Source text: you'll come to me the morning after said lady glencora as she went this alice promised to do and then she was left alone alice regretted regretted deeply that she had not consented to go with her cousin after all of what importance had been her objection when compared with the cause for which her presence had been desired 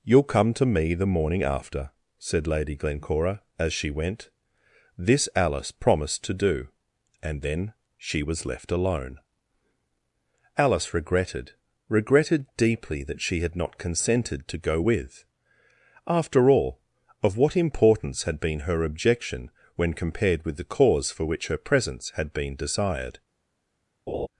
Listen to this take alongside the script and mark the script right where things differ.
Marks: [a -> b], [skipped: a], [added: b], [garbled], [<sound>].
you'll come to me the morning after said lady glencora as she went this alice promised to do and then she was left alone alice regretted regretted deeply that she had not consented to go with [skipped: her cousin] after all of what importance had been her objection when compared with the cause for which her presence had been desired [laugh]